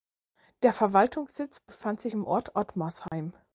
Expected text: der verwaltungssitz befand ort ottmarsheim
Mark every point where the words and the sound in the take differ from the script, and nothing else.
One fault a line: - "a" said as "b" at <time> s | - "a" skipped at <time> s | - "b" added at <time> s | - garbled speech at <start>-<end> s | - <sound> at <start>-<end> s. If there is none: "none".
- "sich im" added at 2.0 s
- dropout at 3.1-3.1 s